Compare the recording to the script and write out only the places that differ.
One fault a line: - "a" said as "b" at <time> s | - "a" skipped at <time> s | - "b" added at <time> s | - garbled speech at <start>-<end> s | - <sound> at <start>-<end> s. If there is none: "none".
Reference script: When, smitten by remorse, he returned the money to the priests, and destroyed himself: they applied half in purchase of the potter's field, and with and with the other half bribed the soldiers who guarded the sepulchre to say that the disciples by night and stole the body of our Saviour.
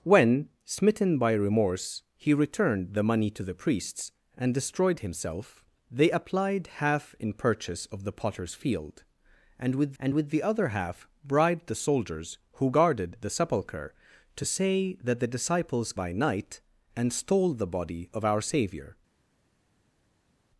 none